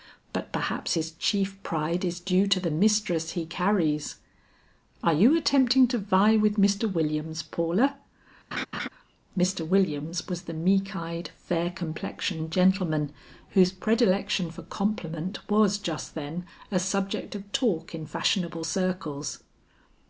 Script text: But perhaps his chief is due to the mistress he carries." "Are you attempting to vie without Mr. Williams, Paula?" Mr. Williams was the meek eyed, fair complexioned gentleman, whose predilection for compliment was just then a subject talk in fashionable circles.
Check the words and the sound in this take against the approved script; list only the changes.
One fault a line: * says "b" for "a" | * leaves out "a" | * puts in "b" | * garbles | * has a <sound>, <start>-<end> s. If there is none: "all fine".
* puts in "pride"
* says "with" for "without"
* has a laugh, 8.5-8.9 s
* puts in "of"